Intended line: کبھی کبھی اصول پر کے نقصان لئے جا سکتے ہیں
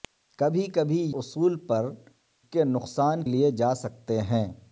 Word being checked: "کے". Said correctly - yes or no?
yes